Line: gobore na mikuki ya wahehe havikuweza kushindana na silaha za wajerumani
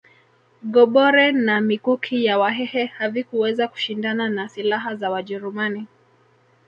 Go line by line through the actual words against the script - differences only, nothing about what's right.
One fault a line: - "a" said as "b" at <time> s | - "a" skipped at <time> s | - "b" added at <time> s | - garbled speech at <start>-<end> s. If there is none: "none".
none